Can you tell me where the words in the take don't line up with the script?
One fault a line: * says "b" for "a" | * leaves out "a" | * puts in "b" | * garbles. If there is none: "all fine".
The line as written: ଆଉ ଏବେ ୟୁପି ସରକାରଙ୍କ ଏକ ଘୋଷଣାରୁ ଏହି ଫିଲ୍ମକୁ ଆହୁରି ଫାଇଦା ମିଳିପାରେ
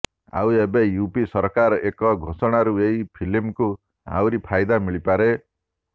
all fine